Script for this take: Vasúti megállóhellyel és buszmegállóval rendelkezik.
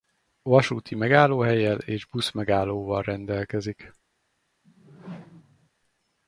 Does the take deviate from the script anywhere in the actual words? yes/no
no